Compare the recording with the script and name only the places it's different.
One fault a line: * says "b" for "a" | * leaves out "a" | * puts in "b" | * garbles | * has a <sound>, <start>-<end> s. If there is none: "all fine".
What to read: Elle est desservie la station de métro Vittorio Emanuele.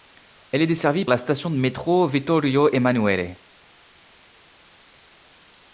all fine